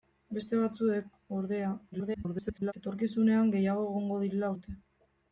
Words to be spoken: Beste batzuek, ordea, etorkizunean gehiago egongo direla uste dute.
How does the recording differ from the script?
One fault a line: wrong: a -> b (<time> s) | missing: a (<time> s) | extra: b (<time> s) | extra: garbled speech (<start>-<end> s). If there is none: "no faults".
extra: garbled speech (1.9-2.7 s)
missing: uste (4.5 s)